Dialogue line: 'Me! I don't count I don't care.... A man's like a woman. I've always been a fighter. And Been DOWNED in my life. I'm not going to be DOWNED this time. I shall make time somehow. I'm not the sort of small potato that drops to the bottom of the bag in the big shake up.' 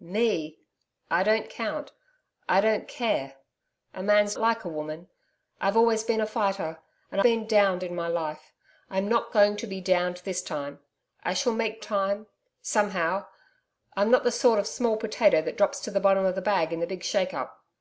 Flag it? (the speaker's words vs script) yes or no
no